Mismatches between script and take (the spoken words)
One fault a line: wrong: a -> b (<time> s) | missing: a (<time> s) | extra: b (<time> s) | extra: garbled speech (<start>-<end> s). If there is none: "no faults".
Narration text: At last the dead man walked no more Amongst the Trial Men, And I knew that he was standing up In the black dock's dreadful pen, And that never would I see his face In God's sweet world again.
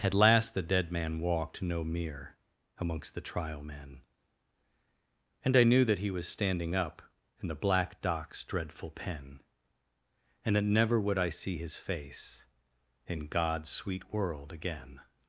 wrong: more -> mere (1.8 s)